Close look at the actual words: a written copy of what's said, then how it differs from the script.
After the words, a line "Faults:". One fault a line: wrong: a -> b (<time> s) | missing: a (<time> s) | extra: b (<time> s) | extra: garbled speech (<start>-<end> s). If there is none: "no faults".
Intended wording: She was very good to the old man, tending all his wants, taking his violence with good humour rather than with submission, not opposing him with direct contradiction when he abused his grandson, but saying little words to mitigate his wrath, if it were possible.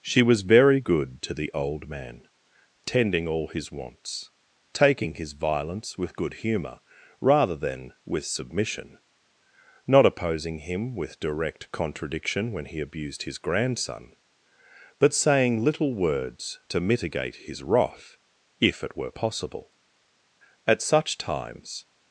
She was very good to the old man, tending all his wants, taking his violence with good humour rather than with submission, not opposing him with direct contradiction when he abused his grandson, but saying little words to mitigate his wrath, if it were possible. At such times
Faults:
extra: At such times (20.7 s)